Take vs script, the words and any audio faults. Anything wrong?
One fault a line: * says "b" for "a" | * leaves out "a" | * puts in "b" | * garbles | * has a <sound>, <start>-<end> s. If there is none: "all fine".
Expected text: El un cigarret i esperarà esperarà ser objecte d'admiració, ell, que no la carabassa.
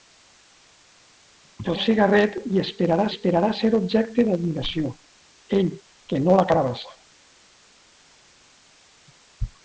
all fine